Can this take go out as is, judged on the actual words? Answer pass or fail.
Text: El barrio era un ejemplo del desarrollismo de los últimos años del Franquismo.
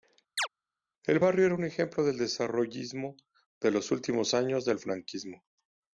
pass